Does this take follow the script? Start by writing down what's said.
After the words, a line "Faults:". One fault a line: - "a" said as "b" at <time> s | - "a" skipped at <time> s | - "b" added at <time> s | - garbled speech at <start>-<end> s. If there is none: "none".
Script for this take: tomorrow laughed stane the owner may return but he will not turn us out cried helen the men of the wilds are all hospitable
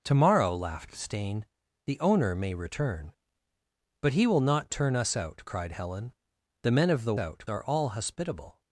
tomorrow laughed stane the owner may return but he will not turn us out cried helen the men of the out are all hospitable
Faults:
- "wilds" said as "out" at 7.2 s